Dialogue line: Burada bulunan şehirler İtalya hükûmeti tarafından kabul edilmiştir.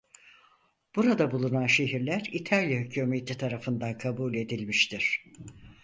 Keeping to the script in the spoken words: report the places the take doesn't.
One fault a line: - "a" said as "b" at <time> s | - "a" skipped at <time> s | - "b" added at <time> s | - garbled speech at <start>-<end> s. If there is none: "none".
none